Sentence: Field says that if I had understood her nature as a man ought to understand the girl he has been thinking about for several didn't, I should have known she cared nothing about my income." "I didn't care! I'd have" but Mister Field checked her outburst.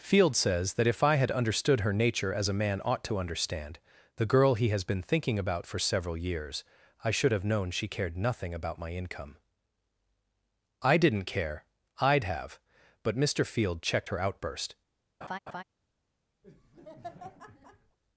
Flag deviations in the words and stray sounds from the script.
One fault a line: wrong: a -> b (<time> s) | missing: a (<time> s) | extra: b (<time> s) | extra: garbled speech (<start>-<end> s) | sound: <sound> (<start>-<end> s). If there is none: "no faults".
wrong: didn't -> years (6.2 s)
sound: laugh (15.2-15.6 s)
sound: laugh (16.4-18.0 s)